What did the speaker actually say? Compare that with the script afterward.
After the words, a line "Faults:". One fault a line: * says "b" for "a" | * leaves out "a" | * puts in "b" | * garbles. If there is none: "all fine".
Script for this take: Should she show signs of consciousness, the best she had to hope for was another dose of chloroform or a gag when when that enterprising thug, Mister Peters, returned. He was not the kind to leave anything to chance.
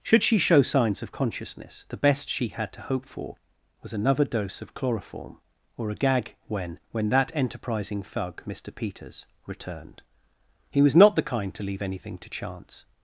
Should she show signs of consciousness, the best she had to hope for was another dose of chloroform or a gag when when that enterprising thug, Mister Peters, returned. He was not the kind to leave anything to chance.
Faults:
all fine